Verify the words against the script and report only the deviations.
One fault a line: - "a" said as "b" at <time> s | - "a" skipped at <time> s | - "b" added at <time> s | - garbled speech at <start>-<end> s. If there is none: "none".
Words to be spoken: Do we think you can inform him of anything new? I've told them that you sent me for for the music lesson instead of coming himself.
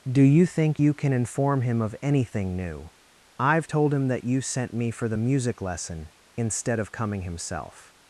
- "we" said as "you" at 0.2 s
- "them" said as "him" at 3.9 s
- "for" skipped at 5.1 s